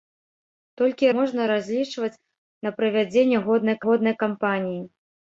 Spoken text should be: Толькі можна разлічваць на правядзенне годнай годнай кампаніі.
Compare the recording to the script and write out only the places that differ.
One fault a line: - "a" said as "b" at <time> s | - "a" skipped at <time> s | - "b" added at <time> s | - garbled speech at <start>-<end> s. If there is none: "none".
none